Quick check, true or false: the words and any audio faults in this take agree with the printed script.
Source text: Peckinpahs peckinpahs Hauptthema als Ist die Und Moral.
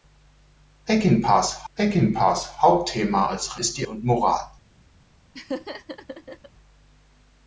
false